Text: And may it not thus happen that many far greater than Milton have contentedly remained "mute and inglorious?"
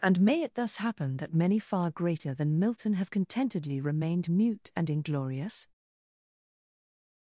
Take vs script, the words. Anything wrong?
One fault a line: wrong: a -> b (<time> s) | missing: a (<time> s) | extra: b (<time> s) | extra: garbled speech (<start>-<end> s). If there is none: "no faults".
missing: not (0.6 s)